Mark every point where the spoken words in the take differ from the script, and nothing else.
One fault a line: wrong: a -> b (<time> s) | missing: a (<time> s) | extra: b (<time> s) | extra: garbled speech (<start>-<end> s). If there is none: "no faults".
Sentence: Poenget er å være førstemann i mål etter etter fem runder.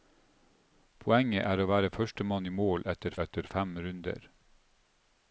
no faults